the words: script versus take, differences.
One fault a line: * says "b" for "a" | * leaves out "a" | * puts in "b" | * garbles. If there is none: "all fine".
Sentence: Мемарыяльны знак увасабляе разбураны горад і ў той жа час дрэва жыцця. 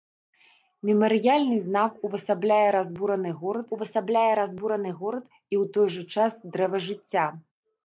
* puts in "увасабляе разбураны горад"